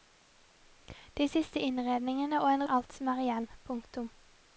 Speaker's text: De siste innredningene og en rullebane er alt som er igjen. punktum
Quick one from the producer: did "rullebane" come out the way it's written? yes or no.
no